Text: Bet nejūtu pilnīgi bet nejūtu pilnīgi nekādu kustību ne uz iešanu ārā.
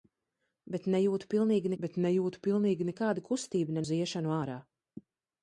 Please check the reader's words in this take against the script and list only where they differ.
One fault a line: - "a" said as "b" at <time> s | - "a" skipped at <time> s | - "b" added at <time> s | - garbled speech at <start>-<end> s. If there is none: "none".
none